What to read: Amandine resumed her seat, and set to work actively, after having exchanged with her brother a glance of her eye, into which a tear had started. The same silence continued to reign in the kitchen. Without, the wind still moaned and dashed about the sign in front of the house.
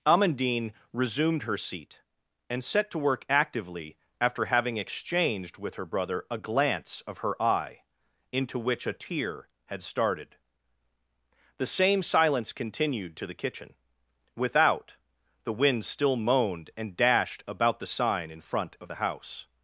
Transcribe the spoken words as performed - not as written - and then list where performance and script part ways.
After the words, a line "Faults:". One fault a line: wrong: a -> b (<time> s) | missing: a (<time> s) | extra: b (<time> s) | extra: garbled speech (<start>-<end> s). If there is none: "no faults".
Amandine resumed her seat, and set to work actively, after having exchanged with her brother a glance of her eye, into which a tear had started. The same silence continued to the kitchen. Without, the wind still moaned and dashed about the sign in front of the house.
Faults:
missing: reign in (13.3 s)